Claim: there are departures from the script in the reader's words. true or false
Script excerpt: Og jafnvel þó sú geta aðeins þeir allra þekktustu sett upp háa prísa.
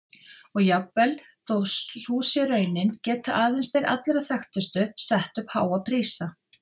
true